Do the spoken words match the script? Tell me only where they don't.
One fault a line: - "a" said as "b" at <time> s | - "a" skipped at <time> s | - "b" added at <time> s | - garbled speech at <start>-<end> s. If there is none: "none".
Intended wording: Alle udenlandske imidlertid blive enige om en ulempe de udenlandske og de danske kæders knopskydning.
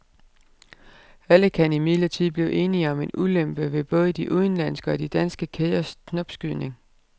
- "udenlandske" said as "kan" at 1.5 s
- "ved både" added at 3.7 s